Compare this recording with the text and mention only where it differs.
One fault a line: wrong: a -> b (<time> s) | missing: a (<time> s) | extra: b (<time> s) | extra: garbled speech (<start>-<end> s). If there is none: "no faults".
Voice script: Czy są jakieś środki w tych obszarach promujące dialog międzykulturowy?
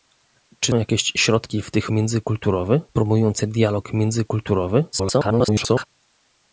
missing: są (0.7 s)
wrong: obszarach -> międzykulturowy (1.9 s)
extra: garbled speech (4.9-5.9 s)